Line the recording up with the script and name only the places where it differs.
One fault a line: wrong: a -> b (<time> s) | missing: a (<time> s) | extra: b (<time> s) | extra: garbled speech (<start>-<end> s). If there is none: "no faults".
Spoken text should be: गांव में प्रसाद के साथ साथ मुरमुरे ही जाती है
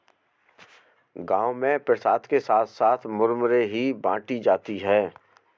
extra: बाटी (3.9 s)